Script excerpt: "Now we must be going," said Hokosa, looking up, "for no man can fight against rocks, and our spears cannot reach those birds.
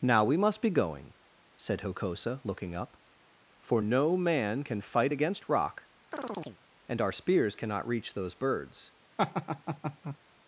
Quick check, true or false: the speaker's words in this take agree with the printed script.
false